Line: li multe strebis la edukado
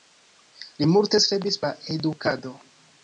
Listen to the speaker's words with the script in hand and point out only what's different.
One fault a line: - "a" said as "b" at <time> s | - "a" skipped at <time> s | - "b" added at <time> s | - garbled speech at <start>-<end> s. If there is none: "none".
none